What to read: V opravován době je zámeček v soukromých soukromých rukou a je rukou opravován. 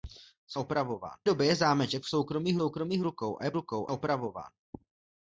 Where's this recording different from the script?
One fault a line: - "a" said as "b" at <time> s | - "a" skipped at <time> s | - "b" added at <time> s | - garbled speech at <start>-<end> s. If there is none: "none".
none